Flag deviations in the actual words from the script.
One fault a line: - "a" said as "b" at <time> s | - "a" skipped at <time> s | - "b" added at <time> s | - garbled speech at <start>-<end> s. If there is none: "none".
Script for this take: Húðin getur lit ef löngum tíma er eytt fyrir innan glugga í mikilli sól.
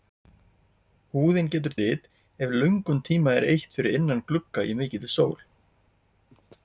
none